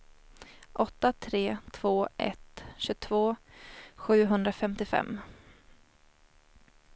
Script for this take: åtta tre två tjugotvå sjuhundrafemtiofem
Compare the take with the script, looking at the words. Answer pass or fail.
fail